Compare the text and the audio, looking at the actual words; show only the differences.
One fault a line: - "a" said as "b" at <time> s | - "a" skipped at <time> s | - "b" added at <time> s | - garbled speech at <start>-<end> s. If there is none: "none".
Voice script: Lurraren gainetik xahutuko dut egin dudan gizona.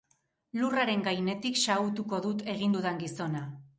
none